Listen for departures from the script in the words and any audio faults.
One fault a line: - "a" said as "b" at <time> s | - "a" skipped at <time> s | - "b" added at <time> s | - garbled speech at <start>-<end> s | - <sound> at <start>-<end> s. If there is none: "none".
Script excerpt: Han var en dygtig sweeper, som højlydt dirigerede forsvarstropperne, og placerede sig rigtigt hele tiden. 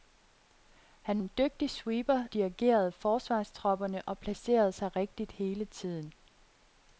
- "var" skipped at 1.2 s
- "som højlydt" skipped at 2.2 s